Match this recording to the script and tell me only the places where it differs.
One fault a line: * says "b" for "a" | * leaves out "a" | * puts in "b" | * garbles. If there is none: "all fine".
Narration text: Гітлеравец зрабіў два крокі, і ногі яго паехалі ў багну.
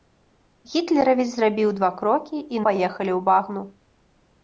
* leaves out "ногі яго"